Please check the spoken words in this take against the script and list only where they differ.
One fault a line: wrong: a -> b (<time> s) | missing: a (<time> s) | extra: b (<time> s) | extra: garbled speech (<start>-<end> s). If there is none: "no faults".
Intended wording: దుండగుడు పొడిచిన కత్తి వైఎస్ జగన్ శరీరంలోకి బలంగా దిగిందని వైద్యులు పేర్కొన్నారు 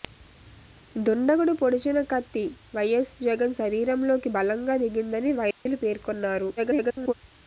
extra: garbled speech (6.6-7.1 s)